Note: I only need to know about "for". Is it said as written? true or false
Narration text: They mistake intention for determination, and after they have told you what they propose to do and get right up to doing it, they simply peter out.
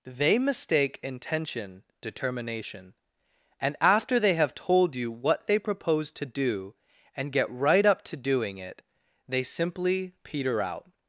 false